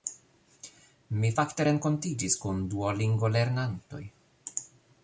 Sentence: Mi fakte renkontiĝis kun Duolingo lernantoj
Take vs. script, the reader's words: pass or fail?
pass